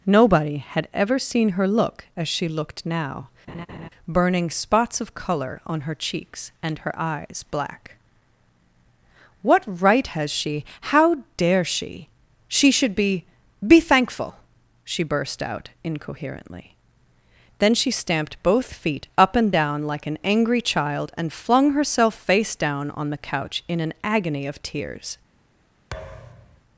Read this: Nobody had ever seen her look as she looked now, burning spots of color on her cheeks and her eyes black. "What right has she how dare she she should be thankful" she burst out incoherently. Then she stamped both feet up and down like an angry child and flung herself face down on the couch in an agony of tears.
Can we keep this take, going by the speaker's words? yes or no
no